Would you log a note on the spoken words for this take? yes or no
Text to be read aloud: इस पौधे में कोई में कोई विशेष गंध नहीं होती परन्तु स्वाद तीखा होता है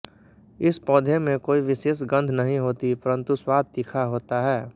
yes